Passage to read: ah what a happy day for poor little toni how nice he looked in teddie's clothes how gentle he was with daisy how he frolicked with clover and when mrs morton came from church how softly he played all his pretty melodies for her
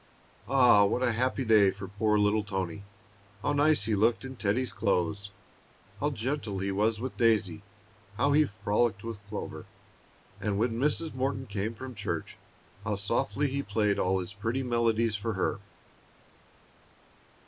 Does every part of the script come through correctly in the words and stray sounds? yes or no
yes